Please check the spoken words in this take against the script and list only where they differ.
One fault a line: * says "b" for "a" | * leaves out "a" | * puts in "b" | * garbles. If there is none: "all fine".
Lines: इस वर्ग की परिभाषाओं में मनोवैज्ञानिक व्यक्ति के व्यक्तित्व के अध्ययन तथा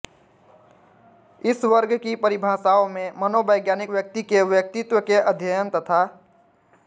all fine